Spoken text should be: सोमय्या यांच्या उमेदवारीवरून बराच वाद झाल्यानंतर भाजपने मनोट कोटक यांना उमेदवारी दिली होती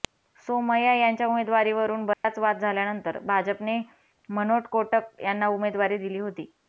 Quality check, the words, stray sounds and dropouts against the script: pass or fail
fail